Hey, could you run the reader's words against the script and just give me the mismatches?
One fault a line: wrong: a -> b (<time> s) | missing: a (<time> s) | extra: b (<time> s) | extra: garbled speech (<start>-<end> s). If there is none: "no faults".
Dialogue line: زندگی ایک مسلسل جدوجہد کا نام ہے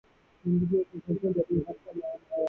no faults